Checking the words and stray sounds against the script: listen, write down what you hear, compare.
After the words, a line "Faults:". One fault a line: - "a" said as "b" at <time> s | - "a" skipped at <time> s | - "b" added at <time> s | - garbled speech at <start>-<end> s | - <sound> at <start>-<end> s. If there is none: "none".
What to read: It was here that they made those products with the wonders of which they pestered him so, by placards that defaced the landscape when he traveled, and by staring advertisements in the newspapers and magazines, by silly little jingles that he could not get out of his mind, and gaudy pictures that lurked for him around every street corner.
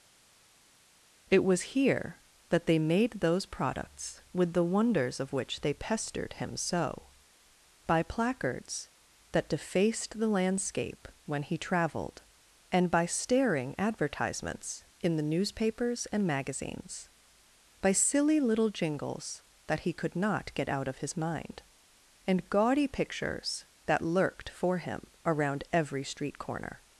It was here that they made those products with the wonders of which they pestered him so, by placards that defaced the landscape when he traveled, and by staring advertisements in the newspapers and magazines, by silly little jingles that he could not get out of his mind, and gaudy pictures that lurked for him around every street corner.
Faults:
none